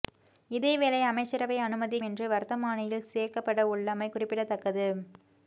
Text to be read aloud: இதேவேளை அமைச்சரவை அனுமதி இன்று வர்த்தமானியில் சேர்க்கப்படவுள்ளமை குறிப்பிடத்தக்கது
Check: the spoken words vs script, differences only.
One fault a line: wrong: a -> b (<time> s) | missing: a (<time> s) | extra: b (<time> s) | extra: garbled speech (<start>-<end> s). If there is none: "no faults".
no faults